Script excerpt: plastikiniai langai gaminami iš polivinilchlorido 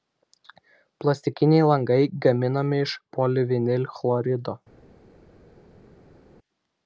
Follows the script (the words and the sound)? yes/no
yes